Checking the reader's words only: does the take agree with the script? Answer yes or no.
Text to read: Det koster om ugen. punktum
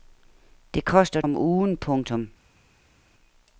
yes